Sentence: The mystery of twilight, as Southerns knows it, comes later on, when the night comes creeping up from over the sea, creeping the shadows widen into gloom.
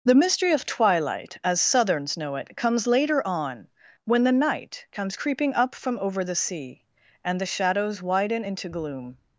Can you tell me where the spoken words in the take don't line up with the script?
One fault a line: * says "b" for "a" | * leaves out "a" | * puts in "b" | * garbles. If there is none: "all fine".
* says "know" for "knows"
* says "and" for "creeping"